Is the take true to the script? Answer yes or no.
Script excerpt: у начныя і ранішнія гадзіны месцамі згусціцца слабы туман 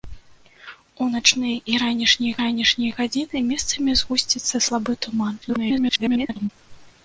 no